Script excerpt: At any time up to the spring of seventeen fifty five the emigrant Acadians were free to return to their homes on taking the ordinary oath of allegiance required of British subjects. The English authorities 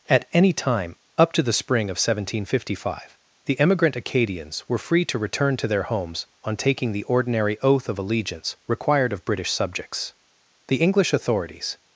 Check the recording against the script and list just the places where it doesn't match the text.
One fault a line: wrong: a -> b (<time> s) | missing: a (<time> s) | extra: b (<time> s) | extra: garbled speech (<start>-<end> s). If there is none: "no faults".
no faults